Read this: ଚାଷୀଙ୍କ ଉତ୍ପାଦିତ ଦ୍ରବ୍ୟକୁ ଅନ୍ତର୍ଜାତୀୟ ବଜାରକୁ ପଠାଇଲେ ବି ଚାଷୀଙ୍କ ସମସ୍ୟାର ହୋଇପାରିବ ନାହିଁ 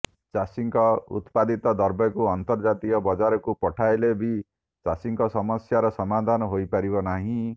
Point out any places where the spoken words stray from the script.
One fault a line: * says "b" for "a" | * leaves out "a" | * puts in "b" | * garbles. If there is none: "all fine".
* puts in "ସମାଧାନ"